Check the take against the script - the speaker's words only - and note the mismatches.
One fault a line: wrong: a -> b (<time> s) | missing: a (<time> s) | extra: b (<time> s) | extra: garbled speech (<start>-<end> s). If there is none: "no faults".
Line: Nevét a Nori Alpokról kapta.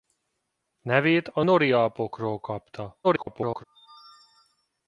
extra: garbled speech (3.0-3.6 s)